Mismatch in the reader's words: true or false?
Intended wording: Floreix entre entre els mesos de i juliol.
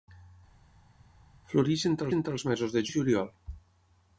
false